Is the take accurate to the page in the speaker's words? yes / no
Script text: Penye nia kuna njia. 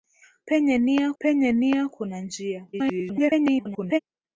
no